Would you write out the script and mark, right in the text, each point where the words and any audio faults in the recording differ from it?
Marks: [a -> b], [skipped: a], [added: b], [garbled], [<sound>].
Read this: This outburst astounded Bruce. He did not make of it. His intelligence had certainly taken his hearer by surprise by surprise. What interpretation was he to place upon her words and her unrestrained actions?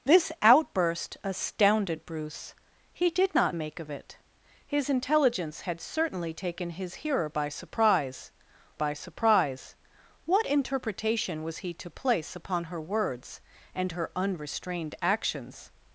This outburst astounded Bruce. He did not make of it. His intelligence had certainly taken his hearer by surprise by surprise. What interpretation was he to place upon her words and her unrestrained actions?